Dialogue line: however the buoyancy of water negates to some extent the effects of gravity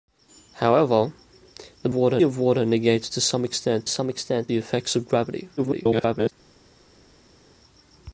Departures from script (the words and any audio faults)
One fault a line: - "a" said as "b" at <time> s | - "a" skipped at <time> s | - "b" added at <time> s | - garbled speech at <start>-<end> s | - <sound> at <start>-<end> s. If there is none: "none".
- "buoyancy" said as "water" at 1.9 s
- "some extent" added at 3.9 s
- garbled speech at 5.6-6.3 s